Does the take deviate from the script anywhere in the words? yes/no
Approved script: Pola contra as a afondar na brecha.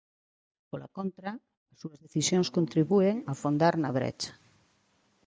yes